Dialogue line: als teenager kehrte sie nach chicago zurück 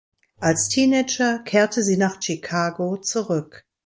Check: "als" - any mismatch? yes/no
no